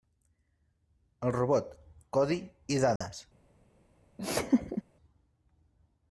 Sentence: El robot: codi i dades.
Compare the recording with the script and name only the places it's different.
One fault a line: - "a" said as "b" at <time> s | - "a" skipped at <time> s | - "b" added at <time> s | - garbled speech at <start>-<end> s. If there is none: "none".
none